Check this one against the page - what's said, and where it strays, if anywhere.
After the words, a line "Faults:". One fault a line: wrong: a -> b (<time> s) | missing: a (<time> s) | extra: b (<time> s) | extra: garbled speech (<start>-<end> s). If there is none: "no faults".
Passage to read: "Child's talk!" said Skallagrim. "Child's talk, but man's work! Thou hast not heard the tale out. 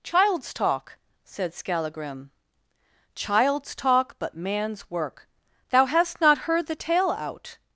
"Child's talk!" said Skallagrim. "Child's talk, but man's work! Thou hast not heard the tale out.
Faults:
no faults